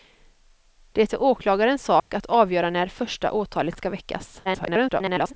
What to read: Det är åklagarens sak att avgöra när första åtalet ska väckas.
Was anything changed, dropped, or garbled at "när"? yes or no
no